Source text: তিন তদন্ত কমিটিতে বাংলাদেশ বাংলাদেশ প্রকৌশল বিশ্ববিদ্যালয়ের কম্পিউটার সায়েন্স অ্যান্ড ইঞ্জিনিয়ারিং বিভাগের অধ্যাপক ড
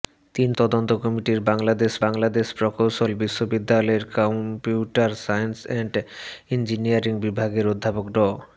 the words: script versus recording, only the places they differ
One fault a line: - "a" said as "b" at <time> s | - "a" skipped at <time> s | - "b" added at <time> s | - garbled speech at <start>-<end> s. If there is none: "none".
none